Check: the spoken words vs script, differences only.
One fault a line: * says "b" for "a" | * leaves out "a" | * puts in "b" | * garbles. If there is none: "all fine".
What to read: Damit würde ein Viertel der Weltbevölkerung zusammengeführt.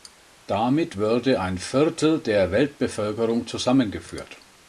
all fine